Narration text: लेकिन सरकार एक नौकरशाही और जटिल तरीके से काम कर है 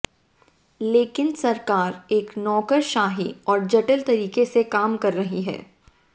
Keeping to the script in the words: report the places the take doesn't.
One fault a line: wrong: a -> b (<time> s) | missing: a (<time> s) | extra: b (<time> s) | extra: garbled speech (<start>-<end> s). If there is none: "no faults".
extra: रही (5.1 s)